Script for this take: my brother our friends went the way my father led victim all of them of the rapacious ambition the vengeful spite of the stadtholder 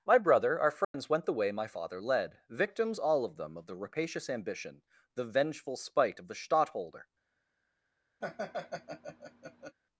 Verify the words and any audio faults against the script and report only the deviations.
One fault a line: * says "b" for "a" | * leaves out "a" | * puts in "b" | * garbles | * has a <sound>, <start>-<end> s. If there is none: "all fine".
* has a dropout, 0.8-0.9 s
* says "victims" for "victim"
* has a laugh, 8.2-9.8 s